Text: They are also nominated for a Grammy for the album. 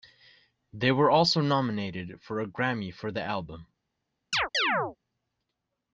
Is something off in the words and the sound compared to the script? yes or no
yes